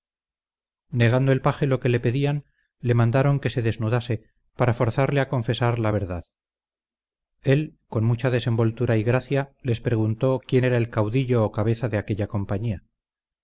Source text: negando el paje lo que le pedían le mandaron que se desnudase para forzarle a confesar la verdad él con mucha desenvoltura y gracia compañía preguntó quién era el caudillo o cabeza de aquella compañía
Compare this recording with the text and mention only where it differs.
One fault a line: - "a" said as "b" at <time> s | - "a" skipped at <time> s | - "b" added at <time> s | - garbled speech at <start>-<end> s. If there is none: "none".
- "compañía" said as "les" at 9.6 s